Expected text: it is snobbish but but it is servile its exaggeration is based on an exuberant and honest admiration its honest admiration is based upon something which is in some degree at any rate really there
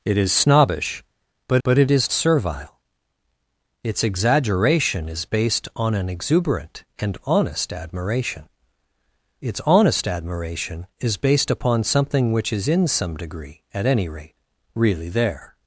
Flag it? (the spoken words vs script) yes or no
no